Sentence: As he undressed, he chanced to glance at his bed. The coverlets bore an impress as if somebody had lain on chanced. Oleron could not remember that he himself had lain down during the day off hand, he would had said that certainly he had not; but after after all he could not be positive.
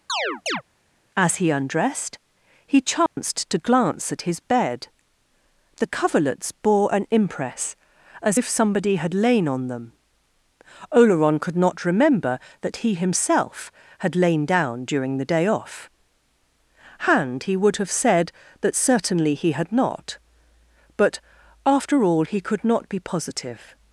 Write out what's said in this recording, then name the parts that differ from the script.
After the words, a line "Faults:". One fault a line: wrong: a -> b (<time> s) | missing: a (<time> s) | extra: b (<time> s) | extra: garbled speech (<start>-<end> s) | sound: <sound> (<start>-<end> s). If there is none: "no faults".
As he undressed, he chanced to glance at his bed. The coverlets bore an impress as if somebody had lain on them. Oleron could not remember that he himself had lain down during the day off hand, he would have said that certainly he had not; but after all he could not be positive.
Faults:
sound: chirp (0.1-0.6 s)
sound: dropout (3.1-3.2 s)
wrong: chanced -> them (9.7 s)
wrong: had -> have (17.8 s)
missing: after (22.0 s)